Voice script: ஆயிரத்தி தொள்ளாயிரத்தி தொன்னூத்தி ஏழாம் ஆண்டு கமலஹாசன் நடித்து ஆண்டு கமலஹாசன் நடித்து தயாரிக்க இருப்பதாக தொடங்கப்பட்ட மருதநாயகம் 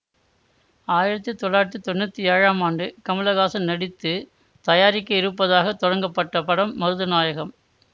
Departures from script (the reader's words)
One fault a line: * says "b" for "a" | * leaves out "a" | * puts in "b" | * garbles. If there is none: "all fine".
* leaves out "ஆண்டு கமலஹாசன் நடித்து"
* puts in "படம்"